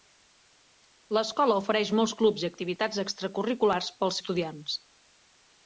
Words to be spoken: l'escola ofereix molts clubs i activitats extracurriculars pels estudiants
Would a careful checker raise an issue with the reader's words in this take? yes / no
no